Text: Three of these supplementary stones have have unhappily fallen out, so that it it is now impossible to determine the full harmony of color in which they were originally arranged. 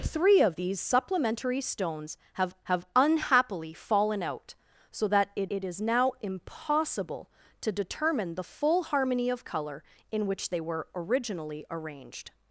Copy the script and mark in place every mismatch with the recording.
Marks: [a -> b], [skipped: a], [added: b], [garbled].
Three of these supplementary stones have have unhappily fallen out, so that it it is now impossible to determine the full harmony of color in which they were originally arranged.